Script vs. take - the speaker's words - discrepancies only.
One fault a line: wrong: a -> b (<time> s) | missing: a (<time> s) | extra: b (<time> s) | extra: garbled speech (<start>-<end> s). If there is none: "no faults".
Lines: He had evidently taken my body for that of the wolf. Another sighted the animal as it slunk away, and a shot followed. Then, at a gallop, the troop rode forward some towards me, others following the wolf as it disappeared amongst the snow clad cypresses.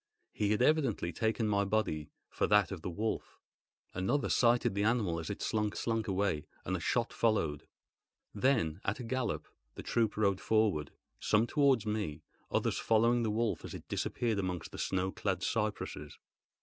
extra: slunk (5.8 s)